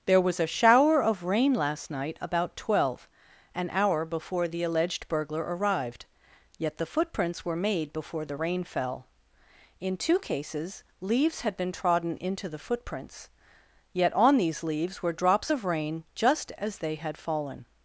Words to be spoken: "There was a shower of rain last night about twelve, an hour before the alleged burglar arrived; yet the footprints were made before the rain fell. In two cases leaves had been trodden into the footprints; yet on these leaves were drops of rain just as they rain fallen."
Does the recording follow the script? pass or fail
fail